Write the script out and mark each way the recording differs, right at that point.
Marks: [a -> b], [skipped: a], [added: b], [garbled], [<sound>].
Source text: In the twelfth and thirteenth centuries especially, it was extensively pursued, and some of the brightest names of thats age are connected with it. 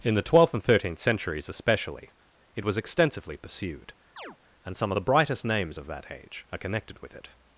In the twelfth and thirteenth centuries especially, it was extensively pursued, [chirp] and some of the brightest names of [thats -> that] age are connected with it.